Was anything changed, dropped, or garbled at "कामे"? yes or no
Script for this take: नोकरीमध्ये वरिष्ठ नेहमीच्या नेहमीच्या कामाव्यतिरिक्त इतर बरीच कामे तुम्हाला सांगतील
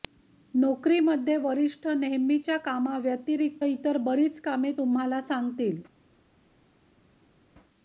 no